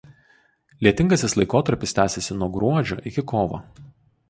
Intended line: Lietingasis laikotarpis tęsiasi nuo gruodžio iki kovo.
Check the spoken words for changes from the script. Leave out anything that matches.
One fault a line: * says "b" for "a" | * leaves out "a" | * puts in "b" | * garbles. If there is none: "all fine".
all fine